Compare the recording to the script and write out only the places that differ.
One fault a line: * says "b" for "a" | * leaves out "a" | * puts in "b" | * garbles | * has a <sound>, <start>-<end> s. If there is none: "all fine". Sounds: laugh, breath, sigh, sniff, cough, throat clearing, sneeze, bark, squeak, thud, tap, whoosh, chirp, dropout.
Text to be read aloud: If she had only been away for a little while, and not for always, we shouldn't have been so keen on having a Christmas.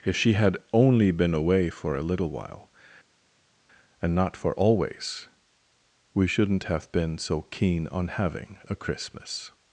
all fine